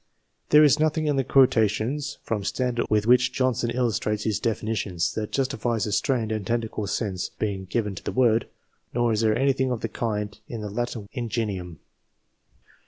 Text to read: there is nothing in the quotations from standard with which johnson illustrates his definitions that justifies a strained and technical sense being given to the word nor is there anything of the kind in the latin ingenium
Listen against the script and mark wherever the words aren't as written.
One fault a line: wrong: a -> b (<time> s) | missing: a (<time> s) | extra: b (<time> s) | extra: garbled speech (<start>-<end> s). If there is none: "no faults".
no faults